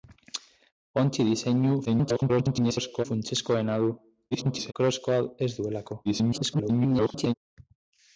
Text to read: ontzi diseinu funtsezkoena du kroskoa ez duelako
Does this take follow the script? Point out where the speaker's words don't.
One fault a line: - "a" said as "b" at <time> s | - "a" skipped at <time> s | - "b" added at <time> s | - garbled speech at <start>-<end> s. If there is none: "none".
- garbled speech at 1.9-3.1 s
- garbled speech at 4.3-4.7 s
- garbled speech at 6.0-7.3 s